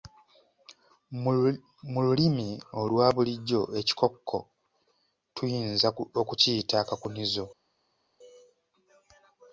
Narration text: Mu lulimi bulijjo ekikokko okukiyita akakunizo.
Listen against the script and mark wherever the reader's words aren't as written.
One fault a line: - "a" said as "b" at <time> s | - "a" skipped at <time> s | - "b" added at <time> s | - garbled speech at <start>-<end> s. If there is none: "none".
- "olwa" added at 2.8 s
- "tuyinza" added at 5.3 s